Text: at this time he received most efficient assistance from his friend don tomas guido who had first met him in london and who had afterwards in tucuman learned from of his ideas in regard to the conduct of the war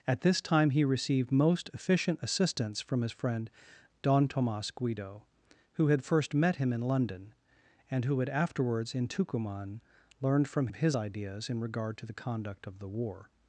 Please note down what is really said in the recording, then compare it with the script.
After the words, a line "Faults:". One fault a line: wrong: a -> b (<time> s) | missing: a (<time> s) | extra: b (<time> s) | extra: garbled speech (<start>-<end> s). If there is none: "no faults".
at this time he received most efficient assistance from his friend don tomas guido who had first met him in london and who had afterwards in tucuman learned from of his ideas in regard to the conduct of the war
Faults:
no faults